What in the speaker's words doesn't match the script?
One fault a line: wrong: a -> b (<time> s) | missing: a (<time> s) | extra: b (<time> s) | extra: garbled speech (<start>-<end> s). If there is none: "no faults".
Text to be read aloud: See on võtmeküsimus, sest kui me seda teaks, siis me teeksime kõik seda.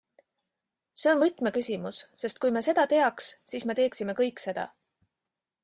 no faults